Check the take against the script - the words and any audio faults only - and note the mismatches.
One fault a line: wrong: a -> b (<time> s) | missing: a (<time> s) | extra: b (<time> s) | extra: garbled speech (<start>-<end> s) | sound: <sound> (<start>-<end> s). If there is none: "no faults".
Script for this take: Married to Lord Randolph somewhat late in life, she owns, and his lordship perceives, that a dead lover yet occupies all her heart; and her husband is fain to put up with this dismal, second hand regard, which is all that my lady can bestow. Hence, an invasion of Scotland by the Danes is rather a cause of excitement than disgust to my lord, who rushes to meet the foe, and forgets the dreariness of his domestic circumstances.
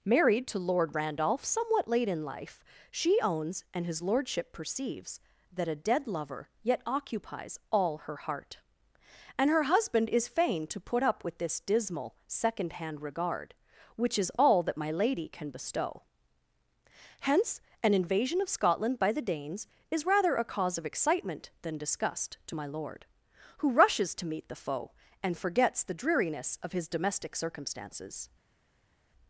no faults